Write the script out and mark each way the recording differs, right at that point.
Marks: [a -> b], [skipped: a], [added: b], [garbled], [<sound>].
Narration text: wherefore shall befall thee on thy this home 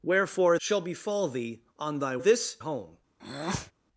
wherefore shall befall thee on thy this home [breath]